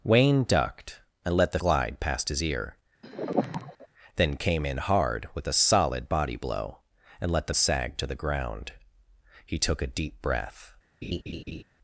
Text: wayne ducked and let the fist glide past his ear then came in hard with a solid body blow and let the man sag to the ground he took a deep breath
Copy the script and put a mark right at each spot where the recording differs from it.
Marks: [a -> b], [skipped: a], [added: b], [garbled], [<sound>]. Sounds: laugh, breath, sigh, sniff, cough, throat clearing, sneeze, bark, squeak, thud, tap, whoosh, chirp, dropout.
wayne ducked and let the [skipped: fist] glide past his ear [sigh] then came in hard with a solid body blow and let the [skipped: man] sag to the ground he took a deep breath [laugh]